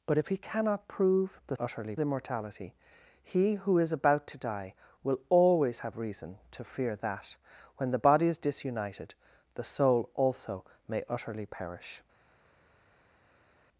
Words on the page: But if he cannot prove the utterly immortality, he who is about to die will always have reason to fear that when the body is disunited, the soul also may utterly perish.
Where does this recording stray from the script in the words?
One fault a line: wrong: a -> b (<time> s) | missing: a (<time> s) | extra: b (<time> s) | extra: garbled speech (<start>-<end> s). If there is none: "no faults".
no faults